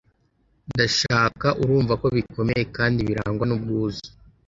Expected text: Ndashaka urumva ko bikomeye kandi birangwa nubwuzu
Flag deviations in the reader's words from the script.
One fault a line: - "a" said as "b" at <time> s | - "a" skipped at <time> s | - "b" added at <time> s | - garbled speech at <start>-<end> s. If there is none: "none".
none